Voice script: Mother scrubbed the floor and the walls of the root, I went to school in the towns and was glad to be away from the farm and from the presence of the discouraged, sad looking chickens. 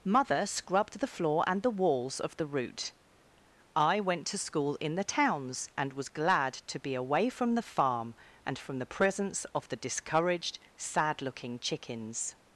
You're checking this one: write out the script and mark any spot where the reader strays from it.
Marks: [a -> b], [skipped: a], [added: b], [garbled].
Mother scrubbed the floor and the walls of the root, I went to school in the towns and was glad to be away from the farm and from the presence of the discouraged, sad looking chickens.